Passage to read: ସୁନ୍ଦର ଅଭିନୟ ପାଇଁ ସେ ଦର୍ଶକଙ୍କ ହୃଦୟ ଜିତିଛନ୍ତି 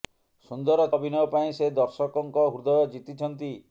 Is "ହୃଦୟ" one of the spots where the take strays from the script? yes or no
no